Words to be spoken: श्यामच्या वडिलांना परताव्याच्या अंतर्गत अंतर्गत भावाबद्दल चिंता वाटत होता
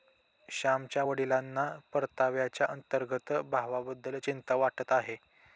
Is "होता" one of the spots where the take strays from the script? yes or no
yes